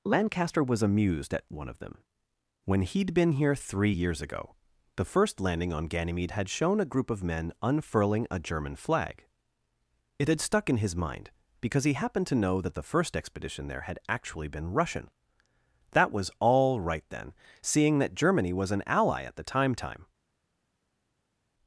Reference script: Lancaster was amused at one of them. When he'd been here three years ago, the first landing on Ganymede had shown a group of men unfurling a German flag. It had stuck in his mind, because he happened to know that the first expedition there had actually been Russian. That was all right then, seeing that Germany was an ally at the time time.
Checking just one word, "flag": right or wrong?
right